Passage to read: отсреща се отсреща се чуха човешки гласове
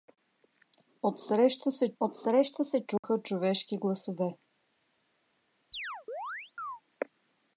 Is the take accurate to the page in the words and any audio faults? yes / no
no